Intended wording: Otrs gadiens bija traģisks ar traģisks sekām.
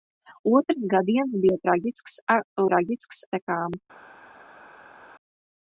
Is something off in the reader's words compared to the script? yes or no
no